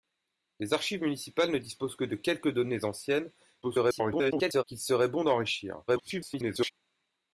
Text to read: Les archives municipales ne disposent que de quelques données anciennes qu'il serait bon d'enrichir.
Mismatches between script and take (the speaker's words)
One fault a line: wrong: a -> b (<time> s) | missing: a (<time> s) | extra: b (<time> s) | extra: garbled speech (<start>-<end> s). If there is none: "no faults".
extra: garbled speech (3.6-4.6 s)
extra: garbled speech (5.9-6.7 s)